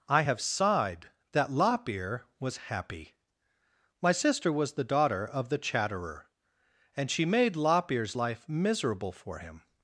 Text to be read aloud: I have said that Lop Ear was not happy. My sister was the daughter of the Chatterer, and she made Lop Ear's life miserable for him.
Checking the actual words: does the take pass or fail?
fail